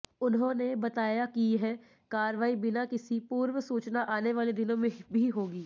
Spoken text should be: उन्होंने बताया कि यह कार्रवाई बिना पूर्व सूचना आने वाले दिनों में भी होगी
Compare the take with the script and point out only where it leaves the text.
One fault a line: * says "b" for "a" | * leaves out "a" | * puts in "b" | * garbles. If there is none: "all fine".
* puts in "किसी"